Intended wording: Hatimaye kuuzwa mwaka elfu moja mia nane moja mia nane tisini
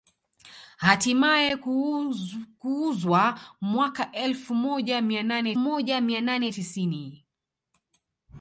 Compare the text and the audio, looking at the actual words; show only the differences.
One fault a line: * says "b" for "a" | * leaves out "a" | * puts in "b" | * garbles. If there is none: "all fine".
all fine